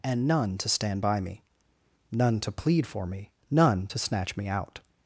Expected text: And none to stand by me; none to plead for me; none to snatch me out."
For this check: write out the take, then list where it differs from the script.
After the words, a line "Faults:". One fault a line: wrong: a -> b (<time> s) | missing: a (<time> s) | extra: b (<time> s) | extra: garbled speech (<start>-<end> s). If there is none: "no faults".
And none to stand by me; none to plead for me; none to snatch me out."
Faults:
no faults